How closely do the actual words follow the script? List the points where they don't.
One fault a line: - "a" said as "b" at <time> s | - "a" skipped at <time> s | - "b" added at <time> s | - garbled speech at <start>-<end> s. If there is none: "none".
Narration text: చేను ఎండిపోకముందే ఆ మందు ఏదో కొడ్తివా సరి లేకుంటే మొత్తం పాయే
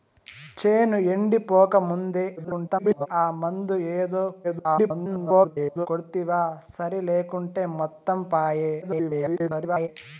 - garbled speech at 2.4-3.1 s
- garbled speech at 4.4-5.9 s
- garbled speech at 8.8-9.9 s